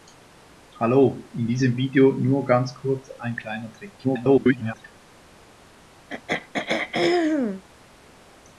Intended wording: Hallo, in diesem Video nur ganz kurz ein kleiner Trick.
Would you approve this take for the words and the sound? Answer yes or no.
no